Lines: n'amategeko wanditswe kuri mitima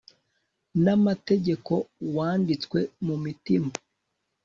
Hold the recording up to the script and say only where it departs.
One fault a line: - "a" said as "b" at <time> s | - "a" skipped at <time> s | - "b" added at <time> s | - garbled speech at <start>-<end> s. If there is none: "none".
- "kuri" said as "mu" at 3.0 s